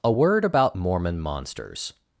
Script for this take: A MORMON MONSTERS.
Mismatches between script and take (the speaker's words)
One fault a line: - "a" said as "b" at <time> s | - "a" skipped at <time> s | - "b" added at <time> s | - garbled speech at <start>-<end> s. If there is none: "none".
- "WORD ABOUT" added at 0.1 s